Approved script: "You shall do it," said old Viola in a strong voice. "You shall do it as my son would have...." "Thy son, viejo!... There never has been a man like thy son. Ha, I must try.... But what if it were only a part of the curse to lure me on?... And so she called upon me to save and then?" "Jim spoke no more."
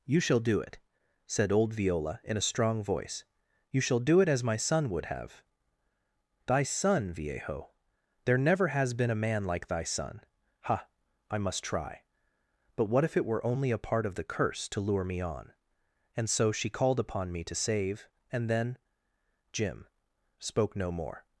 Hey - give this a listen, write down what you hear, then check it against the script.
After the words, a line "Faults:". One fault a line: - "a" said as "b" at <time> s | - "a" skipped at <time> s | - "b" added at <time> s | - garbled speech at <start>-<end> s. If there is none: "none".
"You shall do it," said old Viola in a strong voice. "You shall do it as my son would have...." "Thy son, viejo!... There never has been a man like thy son. Ha, I must try.... But what if it were only a part of the curse to lure me on?... And so she called upon me to save and then?" "Jim spoke no more."
Faults:
none